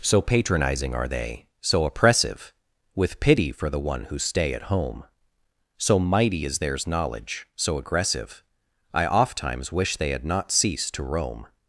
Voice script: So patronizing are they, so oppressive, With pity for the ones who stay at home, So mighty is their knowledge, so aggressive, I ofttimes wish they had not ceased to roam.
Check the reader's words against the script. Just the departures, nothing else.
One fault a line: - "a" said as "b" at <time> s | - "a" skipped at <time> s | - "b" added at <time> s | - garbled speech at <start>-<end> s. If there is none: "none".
- "ones" said as "one" at 3.8 s
- "their" said as "theirs" at 6.6 s